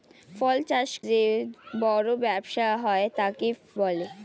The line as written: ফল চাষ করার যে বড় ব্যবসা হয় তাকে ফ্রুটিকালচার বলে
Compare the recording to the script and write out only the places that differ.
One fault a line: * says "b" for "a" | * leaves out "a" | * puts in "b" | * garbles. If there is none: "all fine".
* leaves out "করার"
* leaves out "ফ্রুটিকালচার"